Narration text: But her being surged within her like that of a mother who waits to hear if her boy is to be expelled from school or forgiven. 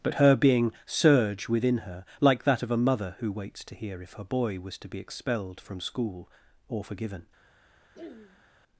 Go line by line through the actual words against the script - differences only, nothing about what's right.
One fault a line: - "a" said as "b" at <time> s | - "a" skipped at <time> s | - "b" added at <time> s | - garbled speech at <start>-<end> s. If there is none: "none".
- "surged" said as "surge" at 0.8 s
- "is" said as "was" at 4.6 s